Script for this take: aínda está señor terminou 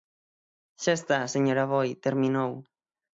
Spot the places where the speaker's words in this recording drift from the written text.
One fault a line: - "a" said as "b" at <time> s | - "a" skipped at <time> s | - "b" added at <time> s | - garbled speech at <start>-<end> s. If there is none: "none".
- "aínda" said as "xa" at 0.8 s
- "aboi" added at 1.6 s